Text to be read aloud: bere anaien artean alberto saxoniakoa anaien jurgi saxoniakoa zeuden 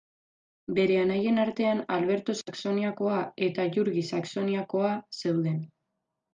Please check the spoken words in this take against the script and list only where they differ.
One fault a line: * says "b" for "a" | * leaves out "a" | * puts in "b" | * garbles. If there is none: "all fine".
* says "eta" for "anaien"